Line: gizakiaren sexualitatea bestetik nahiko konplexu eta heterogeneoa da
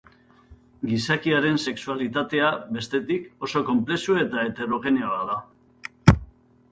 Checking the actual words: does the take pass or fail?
fail